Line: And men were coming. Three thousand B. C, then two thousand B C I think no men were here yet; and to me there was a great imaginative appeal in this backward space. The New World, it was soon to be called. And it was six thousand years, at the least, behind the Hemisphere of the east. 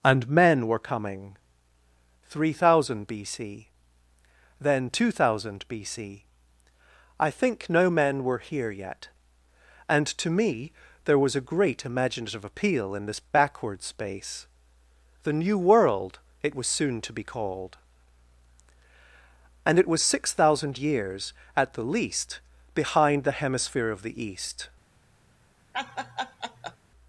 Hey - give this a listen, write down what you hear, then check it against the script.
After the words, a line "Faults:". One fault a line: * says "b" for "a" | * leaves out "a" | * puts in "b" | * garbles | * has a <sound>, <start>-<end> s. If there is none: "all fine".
And men were coming. Three thousand B. C, then two thousand B C I think no men were here yet; and to me there was a great imaginative appeal in this backward space. The New World, it was soon to be called. And it was six thousand years, at the least, behind the Hemisphere of the east.
Faults:
* has a laugh, 25.7-26.8 s